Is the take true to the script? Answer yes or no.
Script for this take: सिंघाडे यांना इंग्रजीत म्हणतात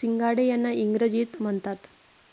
yes